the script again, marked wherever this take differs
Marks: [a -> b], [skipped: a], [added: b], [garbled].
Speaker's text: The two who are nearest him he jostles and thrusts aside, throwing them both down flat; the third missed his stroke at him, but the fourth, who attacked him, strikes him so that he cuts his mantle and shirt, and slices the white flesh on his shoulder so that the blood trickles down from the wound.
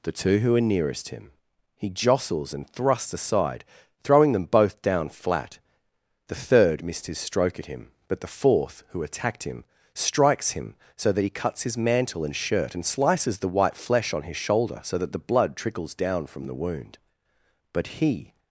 The two who are nearest him he jostles and thrusts aside, throwing them both down flat; the third missed his stroke at him, but the fourth, who attacked him, strikes him so that he cuts his mantle and shirt, and slices the white flesh on his shoulder so that the blood trickles down from the wound. [added: But he]